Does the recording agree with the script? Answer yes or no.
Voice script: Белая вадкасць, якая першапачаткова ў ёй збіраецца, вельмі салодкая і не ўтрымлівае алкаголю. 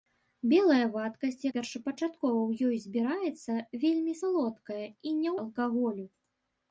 no